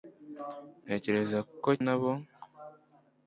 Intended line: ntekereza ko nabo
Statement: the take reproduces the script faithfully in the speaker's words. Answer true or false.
true